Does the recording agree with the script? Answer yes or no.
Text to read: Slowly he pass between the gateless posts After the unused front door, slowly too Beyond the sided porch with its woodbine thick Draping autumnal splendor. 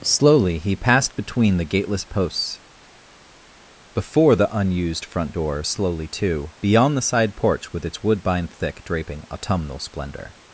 no